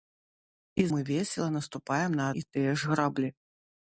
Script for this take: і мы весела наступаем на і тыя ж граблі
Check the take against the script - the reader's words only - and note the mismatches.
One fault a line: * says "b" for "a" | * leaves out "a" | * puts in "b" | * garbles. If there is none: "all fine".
all fine